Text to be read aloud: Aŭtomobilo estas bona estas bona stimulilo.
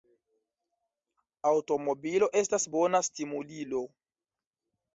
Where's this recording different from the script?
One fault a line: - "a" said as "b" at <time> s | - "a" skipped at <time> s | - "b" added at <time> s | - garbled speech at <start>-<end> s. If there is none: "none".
- "estas bona" skipped at 3.0 s